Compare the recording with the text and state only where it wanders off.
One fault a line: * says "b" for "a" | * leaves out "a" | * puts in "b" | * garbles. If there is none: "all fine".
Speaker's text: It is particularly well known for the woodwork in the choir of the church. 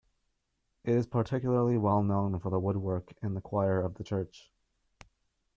all fine